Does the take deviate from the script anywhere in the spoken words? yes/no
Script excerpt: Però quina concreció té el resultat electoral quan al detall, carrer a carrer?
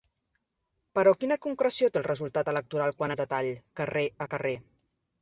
no